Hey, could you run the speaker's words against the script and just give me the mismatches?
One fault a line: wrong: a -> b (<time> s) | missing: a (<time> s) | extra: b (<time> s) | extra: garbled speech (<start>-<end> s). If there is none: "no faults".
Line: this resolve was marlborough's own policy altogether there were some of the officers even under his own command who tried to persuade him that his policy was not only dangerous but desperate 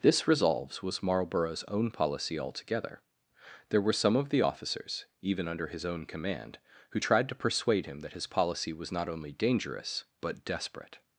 wrong: resolve -> resolves (0.3 s)